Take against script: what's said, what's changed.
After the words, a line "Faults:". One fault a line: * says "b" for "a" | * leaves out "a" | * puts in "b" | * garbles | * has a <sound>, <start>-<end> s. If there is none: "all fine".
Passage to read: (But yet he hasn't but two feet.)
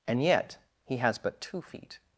(And yet he has but two feet.)
Faults:
* says "And" for "But"
* says "has" for "hasn't"